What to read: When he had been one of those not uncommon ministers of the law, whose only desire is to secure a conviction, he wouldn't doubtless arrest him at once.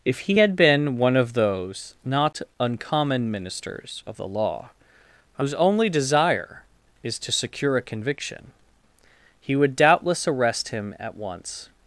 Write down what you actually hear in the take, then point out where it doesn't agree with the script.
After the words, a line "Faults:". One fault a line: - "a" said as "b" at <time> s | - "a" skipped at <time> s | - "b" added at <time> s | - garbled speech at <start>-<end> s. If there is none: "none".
If he had been one of those not uncommon ministers of the law, whose only desire is to secure a conviction, he would doubtless arrest him at once.
Faults:
- "When" said as "If" at 0.0 s
- "wouldn't" said as "would" at 9.6 s